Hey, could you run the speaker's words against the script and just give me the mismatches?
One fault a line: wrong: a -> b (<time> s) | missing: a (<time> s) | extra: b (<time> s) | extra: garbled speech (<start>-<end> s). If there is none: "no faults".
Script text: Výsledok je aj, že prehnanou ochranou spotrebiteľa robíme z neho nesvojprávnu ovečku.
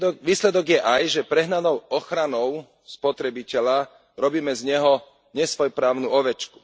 no faults